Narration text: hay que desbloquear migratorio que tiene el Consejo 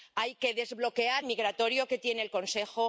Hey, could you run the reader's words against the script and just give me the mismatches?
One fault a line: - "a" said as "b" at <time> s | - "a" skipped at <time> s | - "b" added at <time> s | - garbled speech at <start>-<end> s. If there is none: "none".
none